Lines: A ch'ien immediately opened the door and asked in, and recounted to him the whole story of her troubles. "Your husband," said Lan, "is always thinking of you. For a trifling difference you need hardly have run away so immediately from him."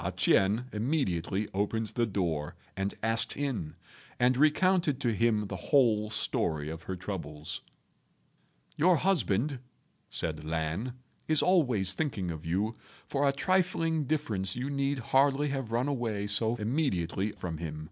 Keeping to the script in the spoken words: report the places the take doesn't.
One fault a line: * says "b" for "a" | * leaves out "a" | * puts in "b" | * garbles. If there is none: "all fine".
all fine